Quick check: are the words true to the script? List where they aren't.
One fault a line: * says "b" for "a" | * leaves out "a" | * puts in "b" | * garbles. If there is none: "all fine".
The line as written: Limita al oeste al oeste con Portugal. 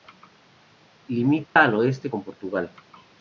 * leaves out "al oeste"